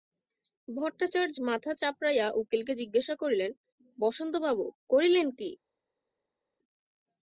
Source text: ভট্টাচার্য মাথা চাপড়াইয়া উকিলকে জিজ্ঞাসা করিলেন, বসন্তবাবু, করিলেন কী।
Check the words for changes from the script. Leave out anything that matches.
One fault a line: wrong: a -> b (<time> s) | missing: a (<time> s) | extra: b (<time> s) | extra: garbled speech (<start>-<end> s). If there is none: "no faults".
no faults